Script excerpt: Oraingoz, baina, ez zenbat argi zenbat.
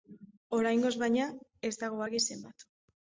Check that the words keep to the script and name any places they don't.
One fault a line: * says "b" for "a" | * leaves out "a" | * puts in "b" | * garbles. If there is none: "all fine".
* says "dago" for "zenbat"